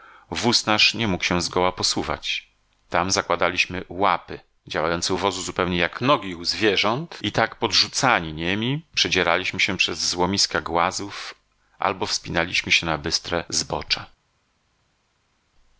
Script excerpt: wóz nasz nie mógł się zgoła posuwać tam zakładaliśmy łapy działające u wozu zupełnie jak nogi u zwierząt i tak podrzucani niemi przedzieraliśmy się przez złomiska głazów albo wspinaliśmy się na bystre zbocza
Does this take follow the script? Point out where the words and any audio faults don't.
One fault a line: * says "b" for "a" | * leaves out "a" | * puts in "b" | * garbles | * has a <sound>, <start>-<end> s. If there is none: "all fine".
all fine